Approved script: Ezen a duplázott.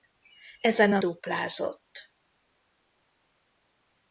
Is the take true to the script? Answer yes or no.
yes